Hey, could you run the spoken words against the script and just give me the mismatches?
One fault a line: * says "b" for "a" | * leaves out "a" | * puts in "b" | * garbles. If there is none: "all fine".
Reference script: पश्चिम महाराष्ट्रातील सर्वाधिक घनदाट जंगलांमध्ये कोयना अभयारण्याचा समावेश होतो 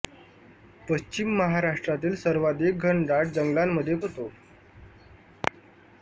* leaves out "कोयना अभयारण्याचा समावेश"